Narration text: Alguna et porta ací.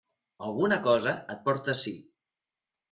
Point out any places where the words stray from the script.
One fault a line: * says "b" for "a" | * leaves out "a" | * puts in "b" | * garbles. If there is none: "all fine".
* puts in "cosa"